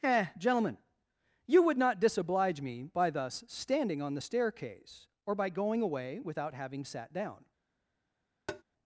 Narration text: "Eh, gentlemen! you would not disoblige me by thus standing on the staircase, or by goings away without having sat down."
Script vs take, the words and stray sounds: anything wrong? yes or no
yes